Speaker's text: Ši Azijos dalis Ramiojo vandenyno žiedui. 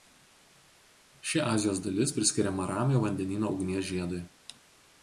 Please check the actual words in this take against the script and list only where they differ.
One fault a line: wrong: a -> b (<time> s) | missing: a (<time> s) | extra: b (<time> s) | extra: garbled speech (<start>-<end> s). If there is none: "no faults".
extra: priskiriama (2.2 s)
extra: ugnies (3.6 s)